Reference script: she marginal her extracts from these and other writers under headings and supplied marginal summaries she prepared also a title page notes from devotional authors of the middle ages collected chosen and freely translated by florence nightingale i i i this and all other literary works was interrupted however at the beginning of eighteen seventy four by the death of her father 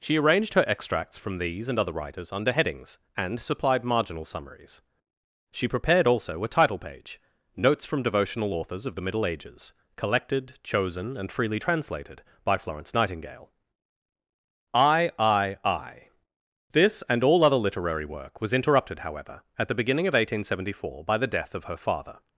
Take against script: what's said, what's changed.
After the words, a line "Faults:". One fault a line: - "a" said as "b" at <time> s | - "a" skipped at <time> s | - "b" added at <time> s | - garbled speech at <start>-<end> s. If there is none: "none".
she arranged her extracts from these and other writers under headings and supplied marginal summaries she prepared also a title page notes from devotional authors of the middle ages collected chosen and freely translated by florence nightingale i i i this and all other literary work was interrupted however at the beginning of eighteen seventy four by the death of her father
Faults:
- "marginal" said as "arranged" at 0.2 s
- "works" said as "work" at 18.1 s